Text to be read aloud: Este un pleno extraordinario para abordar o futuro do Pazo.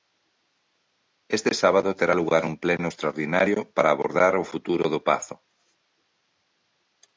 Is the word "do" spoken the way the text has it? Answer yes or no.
yes